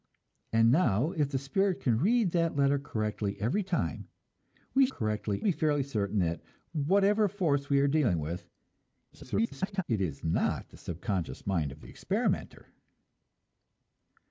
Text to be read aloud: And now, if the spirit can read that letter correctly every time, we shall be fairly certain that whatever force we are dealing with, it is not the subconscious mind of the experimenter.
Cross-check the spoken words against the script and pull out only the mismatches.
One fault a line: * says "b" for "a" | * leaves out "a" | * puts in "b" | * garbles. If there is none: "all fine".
* says "correctly" for "shall"
* garbles